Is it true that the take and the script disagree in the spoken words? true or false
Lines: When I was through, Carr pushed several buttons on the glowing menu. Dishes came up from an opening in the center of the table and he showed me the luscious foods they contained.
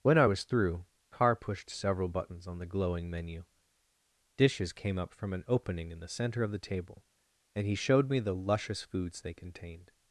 false